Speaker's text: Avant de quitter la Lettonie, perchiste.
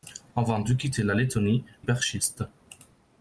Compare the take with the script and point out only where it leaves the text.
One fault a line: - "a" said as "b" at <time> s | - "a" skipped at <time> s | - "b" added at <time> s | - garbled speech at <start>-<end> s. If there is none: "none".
none